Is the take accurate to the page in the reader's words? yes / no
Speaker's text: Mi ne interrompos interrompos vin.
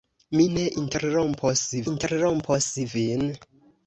yes